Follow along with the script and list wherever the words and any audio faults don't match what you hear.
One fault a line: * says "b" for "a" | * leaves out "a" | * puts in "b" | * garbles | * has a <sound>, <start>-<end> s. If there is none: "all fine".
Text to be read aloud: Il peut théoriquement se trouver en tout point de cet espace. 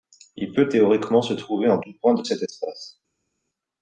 all fine